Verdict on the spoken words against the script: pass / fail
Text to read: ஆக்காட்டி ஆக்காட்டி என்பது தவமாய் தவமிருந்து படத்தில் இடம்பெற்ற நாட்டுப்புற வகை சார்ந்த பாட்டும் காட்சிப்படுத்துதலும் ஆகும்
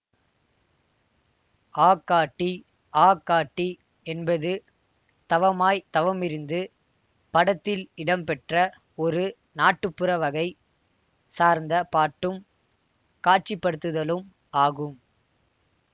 fail